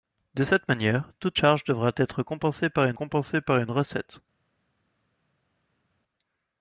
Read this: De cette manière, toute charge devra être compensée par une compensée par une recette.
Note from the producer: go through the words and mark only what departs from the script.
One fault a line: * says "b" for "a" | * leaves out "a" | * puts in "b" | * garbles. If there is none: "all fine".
all fine